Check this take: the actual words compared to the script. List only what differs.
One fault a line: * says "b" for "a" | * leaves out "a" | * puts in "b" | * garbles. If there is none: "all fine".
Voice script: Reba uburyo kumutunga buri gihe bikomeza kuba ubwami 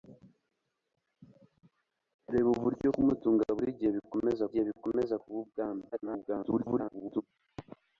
* puts in "gihe bikomeza"
* garbles